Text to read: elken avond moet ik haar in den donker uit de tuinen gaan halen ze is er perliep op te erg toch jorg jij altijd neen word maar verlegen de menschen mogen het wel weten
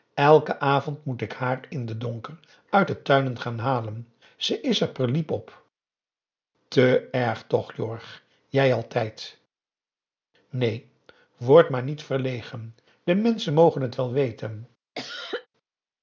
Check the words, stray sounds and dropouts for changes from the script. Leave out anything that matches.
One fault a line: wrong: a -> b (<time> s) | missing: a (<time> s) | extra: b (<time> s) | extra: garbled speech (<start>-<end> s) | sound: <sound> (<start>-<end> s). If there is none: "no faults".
extra: niet (11.8 s)
sound: cough (14.9-15.5 s)